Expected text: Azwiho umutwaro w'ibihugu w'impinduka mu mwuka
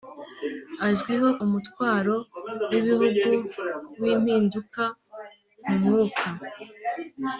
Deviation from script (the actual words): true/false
false